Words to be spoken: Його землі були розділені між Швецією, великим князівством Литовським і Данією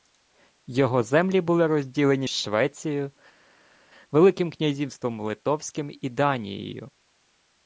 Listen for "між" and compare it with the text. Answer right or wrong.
wrong